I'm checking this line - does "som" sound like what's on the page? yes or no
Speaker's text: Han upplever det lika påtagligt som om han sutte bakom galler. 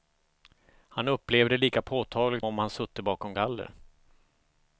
no